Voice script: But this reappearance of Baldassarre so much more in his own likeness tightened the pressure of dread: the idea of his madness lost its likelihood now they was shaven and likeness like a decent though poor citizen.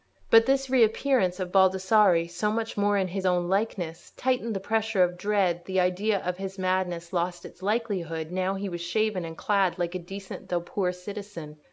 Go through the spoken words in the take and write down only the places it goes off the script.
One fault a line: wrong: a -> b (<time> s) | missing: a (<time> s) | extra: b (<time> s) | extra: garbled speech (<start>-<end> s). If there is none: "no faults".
wrong: they -> he (8.5 s)
wrong: likeness -> clad (9.4 s)